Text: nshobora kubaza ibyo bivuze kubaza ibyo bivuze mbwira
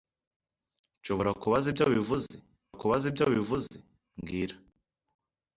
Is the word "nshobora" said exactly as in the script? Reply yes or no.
yes